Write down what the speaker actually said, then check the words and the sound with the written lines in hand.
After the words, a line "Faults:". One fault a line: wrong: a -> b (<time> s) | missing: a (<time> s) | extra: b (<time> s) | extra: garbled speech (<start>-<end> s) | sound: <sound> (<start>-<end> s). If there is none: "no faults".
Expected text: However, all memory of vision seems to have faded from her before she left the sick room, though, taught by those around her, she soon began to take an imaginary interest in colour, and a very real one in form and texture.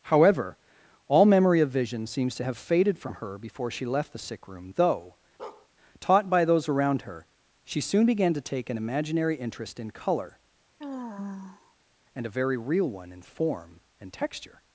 However, all memory of vision seems to have faded from her before she left the sick room, though, taught by those around her, she soon began to take an imaginary interest in colour, and a very real one in form and texture.
Faults:
sound: bark (5.4-5.7 s)
sound: sigh (10.8-11.7 s)